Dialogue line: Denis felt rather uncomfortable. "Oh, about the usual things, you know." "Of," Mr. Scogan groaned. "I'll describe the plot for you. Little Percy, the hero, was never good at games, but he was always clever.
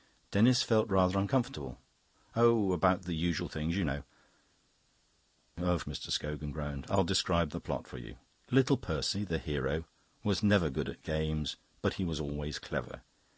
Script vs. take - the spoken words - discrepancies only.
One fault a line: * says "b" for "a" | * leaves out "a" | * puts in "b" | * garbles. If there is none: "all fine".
all fine